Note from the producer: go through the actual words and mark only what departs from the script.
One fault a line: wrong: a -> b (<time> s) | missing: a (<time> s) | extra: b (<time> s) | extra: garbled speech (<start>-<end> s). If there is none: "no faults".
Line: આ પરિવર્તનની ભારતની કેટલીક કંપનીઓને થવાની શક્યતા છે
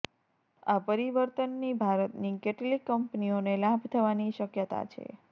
extra: લાભ (3.6 s)